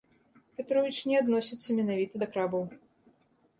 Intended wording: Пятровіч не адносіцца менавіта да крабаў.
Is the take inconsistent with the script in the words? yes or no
no